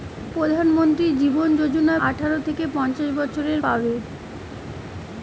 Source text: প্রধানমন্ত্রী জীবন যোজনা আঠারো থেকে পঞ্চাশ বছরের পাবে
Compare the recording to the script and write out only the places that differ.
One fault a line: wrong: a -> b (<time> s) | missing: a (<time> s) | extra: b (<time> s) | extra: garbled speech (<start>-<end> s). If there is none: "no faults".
no faults